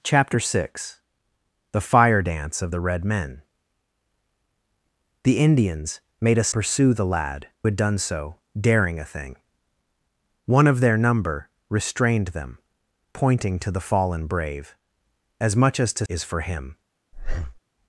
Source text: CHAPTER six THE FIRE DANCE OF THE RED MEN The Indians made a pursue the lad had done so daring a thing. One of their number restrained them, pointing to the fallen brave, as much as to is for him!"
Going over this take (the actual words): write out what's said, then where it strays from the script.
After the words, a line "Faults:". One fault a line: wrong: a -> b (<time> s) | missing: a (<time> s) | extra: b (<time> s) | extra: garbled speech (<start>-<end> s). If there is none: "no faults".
CHAPTER six THE FIRE DANCE OF THE RED MEN The Indians made a pursue the lad had done so daring a thing. One of their number restrained them, pointing to the fallen brave, as much as to is for him!"
Faults:
no faults